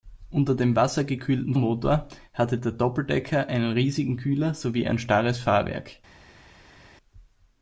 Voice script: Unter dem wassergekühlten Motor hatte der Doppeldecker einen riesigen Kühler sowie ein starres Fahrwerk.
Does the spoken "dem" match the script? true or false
true